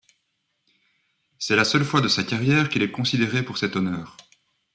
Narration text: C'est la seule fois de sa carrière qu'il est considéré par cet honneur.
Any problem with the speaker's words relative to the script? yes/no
yes